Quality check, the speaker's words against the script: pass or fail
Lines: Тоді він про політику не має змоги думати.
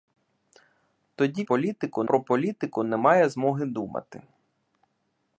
fail